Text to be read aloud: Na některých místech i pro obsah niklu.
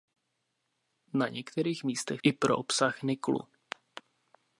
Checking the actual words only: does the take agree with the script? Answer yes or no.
yes